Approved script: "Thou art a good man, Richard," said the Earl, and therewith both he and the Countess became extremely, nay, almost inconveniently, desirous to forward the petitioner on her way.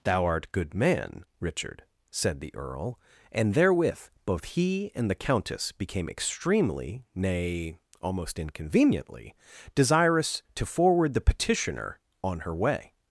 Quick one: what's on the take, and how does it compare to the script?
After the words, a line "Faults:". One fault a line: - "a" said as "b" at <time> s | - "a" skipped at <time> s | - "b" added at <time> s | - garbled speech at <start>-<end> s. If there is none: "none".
"Thou art good man, Richard," said the Earl, and therewith both he and the Countess became extremely, nay, almost inconveniently, desirous to forward the petitioner on her way.
Faults:
- "a" skipped at 0.5 s